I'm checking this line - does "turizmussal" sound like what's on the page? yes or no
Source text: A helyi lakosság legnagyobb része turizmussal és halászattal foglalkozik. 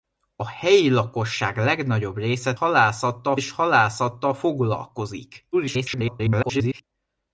no